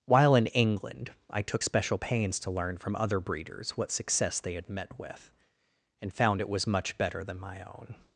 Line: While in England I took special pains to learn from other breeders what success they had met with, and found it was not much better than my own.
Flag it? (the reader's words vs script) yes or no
yes